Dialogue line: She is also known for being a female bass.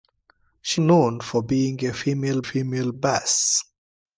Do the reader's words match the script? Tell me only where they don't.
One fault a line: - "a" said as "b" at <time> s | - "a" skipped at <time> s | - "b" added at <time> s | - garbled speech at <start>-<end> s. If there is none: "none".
- "is also" skipped at 0.8 s
- "female" added at 2.4 s